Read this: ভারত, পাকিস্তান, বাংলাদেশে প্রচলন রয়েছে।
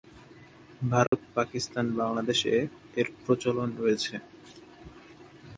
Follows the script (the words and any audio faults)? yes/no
no